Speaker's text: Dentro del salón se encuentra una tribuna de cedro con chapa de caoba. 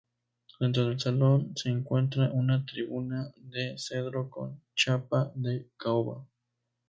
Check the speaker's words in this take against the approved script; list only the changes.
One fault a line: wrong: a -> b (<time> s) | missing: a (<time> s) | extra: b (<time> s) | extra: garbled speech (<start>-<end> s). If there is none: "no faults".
no faults